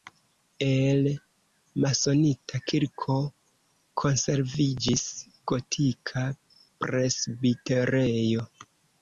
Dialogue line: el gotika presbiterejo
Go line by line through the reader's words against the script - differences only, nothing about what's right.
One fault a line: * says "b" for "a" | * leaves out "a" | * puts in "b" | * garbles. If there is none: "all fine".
* puts in "masonita kirko konserviĝis"